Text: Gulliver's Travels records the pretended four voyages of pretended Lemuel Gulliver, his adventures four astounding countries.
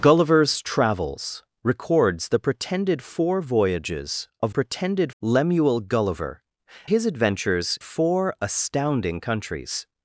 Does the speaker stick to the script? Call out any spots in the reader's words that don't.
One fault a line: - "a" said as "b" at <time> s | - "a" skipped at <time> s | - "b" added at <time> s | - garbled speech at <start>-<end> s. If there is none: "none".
none